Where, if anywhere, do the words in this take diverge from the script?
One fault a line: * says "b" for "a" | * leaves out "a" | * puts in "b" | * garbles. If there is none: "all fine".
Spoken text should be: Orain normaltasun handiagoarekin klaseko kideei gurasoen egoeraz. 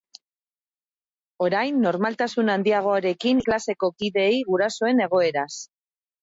all fine